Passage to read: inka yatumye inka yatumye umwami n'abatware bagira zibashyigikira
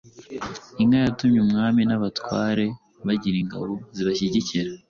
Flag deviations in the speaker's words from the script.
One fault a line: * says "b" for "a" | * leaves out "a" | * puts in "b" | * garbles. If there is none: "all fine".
* leaves out "inka yatumye"
* puts in "ingabo"